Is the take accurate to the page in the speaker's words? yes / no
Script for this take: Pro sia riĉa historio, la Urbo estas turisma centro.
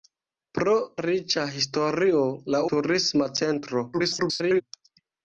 no